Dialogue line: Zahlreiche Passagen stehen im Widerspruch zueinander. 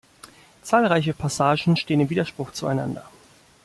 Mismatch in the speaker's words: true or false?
false